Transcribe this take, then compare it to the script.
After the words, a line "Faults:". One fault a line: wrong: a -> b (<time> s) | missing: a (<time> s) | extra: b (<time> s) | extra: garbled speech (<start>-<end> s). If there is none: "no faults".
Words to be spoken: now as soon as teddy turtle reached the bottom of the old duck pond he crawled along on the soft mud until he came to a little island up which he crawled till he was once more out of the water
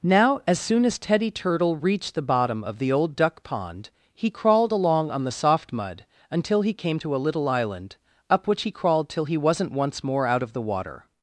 now as soon as teddy turtle reached the bottom of the old duck pond he crawled along on the soft mud until he came to a little island up which he crawled till he wasn't once more out of the water
Faults:
wrong: was -> wasn't (9.4 s)